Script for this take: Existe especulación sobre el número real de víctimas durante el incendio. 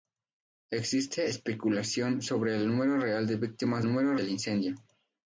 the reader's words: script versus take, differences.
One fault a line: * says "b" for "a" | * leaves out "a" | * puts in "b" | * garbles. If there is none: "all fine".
* says "número" for "durante"